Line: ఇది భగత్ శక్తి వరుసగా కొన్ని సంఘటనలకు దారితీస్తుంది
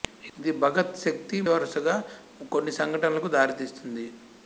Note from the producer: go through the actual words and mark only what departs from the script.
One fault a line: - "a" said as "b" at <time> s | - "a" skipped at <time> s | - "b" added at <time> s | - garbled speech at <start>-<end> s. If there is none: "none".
none